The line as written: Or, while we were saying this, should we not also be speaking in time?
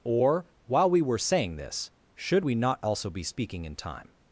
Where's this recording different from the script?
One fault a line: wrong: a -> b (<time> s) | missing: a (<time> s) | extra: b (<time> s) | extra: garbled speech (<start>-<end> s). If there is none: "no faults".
no faults